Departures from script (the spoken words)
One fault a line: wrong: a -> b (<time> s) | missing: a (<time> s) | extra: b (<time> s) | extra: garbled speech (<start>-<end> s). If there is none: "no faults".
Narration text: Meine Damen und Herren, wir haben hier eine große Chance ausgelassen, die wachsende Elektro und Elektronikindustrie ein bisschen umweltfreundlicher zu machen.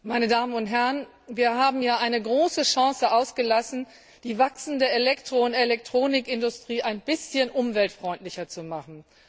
no faults